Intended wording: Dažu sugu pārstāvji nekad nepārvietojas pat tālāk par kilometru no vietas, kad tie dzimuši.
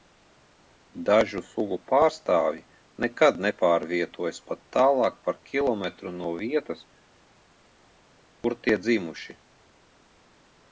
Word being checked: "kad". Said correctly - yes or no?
no